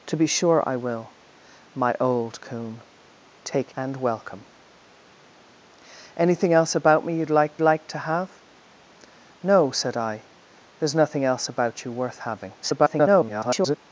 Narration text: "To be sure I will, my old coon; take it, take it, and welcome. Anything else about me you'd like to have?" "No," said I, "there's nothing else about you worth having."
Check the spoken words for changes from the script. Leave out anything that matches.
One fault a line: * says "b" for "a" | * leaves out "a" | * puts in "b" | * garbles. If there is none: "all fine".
* leaves out "it take it"
* puts in "like"
* garbles